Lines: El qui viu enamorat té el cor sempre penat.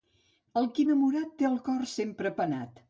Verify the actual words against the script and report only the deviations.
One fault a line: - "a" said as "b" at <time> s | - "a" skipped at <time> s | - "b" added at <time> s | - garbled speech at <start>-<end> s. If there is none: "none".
- "viu" skipped at 0.8 s